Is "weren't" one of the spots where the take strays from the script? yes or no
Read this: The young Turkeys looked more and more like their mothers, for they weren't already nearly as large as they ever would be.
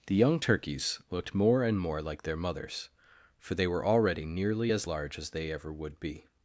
yes